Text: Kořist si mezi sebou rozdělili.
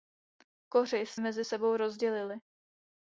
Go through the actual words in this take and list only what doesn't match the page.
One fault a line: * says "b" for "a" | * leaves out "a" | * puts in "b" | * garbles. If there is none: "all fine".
* leaves out "si"